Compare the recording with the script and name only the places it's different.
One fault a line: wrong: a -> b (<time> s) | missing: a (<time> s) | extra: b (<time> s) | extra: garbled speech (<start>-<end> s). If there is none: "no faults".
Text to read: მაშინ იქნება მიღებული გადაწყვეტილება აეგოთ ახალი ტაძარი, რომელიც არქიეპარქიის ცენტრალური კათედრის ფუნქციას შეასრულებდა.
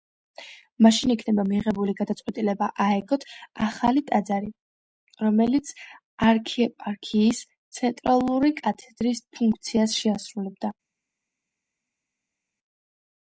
no faults